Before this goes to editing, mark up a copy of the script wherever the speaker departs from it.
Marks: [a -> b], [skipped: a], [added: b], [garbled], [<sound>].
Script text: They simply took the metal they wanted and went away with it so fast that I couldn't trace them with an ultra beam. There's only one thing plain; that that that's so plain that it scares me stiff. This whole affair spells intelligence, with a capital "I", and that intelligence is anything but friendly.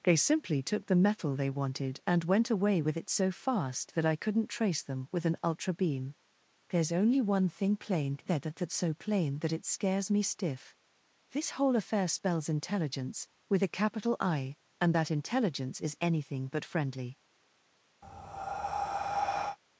They simply took the metal they wanted and went away with it so fast that I couldn't trace them with an ultra beam. There's only one thing plain; that that that's so plain that it scares me stiff. This whole affair spells intelligence, with a capital "I", and that intelligence is anything but friendly. [breath]